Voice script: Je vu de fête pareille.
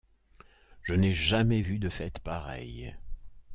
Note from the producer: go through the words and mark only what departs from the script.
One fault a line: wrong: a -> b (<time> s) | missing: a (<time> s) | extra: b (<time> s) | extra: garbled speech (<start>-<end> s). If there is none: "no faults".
extra: n'ai jamais (0.9 s)